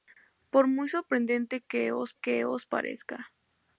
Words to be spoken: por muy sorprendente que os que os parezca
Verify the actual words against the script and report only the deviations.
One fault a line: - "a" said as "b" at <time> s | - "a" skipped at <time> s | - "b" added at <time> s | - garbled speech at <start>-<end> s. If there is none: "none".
none